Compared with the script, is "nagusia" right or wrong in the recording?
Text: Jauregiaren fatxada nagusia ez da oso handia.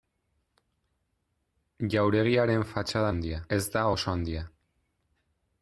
wrong